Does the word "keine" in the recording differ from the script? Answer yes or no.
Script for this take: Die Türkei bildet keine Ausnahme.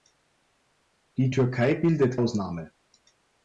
yes